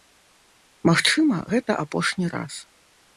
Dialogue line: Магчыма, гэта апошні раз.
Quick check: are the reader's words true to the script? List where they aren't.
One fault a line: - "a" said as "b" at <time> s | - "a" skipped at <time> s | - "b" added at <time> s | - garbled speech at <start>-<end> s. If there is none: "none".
none